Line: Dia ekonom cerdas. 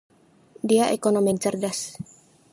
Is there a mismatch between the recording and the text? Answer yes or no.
yes